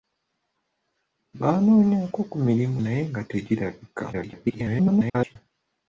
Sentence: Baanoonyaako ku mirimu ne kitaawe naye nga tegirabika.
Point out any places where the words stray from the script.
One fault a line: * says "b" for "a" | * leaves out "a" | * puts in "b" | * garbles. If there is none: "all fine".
* leaves out "ne kitaawe"
* garbles